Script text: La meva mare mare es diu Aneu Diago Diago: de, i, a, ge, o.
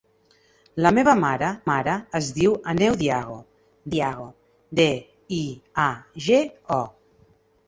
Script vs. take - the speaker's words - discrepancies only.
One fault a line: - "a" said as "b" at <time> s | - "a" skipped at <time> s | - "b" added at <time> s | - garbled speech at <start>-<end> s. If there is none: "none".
none